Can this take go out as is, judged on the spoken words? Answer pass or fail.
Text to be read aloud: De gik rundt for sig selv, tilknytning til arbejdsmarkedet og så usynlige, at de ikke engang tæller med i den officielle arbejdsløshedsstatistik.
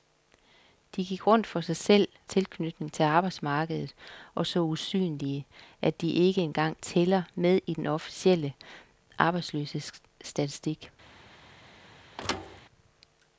pass